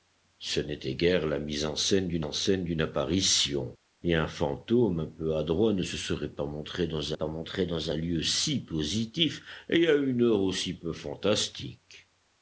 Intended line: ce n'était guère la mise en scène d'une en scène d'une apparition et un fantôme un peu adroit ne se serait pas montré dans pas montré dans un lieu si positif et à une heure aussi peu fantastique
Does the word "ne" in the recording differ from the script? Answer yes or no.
no